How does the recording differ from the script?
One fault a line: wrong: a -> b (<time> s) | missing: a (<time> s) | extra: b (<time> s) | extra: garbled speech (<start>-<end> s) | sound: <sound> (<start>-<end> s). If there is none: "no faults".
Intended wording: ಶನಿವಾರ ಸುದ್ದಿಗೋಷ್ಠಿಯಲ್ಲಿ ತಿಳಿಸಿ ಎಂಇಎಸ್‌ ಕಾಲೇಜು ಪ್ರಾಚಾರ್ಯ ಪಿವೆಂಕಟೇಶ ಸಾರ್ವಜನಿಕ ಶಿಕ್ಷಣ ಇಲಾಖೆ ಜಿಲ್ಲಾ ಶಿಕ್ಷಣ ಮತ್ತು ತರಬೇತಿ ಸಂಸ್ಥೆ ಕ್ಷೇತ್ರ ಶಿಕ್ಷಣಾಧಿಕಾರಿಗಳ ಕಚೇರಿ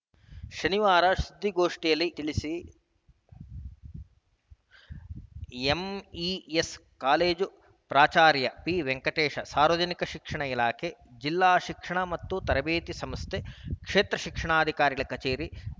no faults